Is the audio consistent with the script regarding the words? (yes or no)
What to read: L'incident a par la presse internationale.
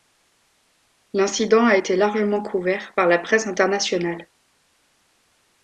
no